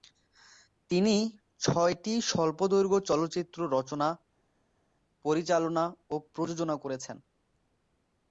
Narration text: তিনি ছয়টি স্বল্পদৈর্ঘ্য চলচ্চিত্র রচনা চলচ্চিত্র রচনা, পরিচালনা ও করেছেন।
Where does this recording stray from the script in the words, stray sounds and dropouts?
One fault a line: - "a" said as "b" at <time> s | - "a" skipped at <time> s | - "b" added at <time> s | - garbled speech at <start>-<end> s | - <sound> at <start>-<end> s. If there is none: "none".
- "চলচ্চিত্র রচনা" skipped at 4.1 s
- "প্রযোজনা" added at 6.3 s